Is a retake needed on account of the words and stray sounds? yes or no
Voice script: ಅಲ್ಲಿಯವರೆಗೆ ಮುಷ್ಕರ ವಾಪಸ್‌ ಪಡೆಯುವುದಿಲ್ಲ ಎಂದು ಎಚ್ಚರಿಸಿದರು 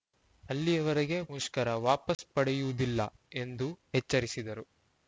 yes